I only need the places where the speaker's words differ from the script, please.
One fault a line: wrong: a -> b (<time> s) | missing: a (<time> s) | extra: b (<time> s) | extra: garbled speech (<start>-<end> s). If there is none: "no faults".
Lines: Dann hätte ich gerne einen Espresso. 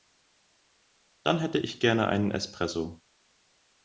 no faults